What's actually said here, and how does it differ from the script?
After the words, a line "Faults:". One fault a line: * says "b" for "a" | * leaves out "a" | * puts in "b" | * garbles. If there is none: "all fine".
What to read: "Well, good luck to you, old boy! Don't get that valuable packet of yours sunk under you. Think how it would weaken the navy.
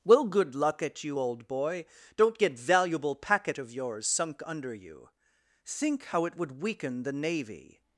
"Well, good luck at you, old boy! Don't get valuable packet of yours sunk under you. Think how it would weaken the navy.
Faults:
* says "at" for "to"
* leaves out "that"